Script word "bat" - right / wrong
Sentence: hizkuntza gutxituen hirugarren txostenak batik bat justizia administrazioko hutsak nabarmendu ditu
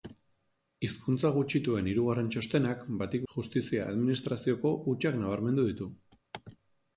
wrong